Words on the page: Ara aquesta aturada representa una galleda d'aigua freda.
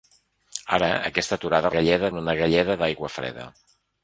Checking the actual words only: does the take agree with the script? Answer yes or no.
no